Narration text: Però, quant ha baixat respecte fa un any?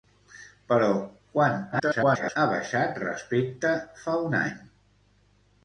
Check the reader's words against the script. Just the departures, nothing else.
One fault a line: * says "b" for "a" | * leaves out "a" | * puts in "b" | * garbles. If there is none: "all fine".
* garbles